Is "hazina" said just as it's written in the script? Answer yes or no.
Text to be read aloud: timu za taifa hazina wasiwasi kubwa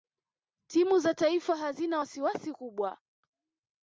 yes